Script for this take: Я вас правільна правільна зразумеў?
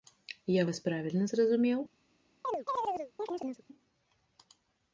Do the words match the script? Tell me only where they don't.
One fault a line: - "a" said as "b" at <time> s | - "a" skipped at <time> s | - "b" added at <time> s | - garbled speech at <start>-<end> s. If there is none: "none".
- "правільна" skipped at 1.3 s